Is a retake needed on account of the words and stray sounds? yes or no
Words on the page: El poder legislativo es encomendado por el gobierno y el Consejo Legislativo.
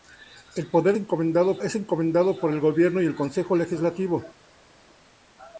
yes